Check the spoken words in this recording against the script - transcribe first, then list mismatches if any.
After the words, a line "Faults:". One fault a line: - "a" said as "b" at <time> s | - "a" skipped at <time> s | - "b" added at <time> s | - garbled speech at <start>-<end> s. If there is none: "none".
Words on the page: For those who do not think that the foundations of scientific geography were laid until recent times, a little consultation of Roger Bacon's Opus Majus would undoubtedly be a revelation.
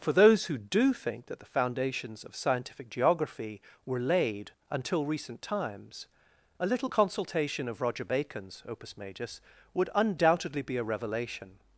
For those who do think that the foundations of scientific geography were laid until recent times, a little consultation of Roger Bacon's Opus Majus would undoubtedly be a revelation.
Faults:
- "not" skipped at 0.9 s